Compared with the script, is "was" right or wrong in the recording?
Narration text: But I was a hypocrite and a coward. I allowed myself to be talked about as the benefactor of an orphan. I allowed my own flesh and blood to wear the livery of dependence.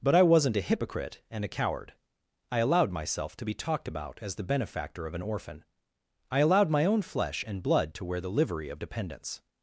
wrong